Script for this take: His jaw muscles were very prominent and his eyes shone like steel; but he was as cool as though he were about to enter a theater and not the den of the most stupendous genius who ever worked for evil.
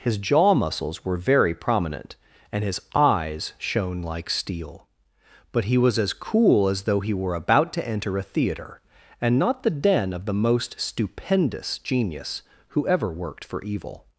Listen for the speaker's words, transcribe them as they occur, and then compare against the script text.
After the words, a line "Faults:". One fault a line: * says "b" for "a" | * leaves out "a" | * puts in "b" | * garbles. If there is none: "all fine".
His jaw muscles were very prominent and his eyes shone like steel; but he was as cool as though he were about to enter a theater and not the den of the most stupendous genius who ever worked for evil.
Faults:
all fine